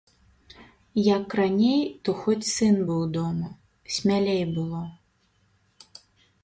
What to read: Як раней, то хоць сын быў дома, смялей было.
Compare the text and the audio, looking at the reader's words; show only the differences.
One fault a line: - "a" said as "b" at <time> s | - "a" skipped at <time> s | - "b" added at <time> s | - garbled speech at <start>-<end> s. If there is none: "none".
none